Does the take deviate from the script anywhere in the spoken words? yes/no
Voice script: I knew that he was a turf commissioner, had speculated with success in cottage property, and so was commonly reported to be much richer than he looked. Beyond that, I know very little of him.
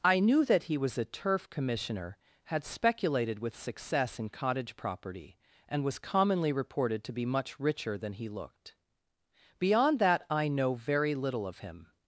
yes